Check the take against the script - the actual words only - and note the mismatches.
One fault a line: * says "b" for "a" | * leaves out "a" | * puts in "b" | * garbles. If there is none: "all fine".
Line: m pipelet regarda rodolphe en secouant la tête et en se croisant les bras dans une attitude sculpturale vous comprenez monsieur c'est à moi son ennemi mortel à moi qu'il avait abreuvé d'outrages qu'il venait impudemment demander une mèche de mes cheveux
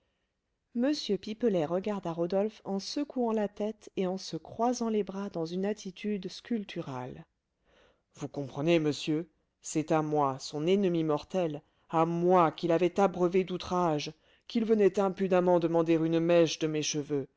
all fine